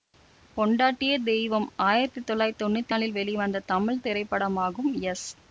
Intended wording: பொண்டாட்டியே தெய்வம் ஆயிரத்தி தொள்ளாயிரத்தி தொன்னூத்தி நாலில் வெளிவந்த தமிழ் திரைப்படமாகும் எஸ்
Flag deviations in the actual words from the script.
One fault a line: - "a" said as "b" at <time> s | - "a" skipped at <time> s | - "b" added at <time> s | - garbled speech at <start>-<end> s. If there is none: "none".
none